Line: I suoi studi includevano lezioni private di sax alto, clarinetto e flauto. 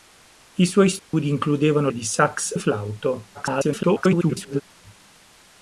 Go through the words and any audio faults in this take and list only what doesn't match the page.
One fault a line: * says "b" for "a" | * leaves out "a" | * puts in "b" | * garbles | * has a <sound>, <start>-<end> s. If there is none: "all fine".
* has a dropout, 1.0-1.1 s
* leaves out "lezioni private"
* leaves out "alto clarinetto"
* garbles